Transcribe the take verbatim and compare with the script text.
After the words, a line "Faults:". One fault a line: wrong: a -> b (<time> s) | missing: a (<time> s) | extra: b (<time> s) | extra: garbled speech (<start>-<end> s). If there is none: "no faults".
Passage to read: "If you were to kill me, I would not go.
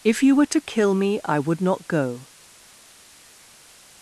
"If you were to kill me, I would not go.
Faults:
no faults